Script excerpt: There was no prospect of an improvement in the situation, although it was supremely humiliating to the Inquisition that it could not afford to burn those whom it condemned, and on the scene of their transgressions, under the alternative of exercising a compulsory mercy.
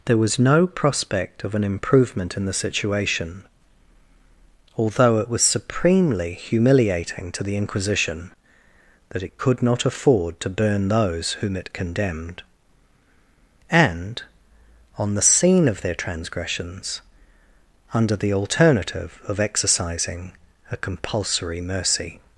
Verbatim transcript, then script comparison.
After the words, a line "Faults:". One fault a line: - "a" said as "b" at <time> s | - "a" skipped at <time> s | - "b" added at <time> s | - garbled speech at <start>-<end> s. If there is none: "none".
There was no prospect of an improvement in the situation, although it was supremely humiliating to the Inquisition that it could not afford to burn those whom it condemned, and on the scene of their transgressions, under the alternative of exercising a compulsory mercy.
Faults:
none